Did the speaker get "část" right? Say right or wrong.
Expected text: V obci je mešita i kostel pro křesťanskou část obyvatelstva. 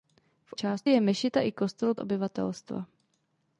wrong